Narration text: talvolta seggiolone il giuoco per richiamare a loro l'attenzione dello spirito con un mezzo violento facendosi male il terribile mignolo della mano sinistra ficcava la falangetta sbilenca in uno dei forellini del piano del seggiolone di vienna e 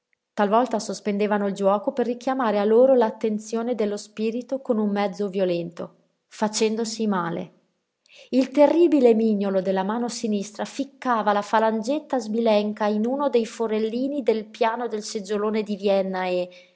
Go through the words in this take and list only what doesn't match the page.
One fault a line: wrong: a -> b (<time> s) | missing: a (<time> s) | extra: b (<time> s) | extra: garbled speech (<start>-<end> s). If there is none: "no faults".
wrong: seggiolone -> sospendevano (0.8 s)